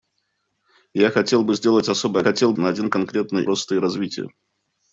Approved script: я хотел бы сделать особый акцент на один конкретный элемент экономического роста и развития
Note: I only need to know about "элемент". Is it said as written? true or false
false